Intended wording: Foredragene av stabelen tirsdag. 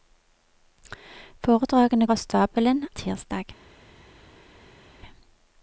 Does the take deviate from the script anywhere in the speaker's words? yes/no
no